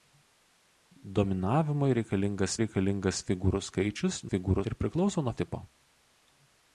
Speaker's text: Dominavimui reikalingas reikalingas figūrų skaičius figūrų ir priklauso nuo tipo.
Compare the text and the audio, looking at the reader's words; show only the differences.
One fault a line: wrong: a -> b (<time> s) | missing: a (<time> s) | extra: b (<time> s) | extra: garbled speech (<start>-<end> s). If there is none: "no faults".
no faults